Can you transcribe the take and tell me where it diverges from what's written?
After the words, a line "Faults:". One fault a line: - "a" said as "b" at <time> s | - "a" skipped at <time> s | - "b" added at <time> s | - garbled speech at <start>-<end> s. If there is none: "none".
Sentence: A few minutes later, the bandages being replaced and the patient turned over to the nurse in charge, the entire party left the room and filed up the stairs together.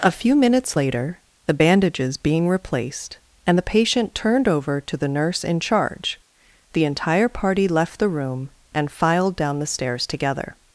A few minutes later, the bandages being replaced and the patient turned over to the nurse in charge, the entire party left the room and filed down the stairs together.
Faults:
- "up" said as "down" at 9.4 s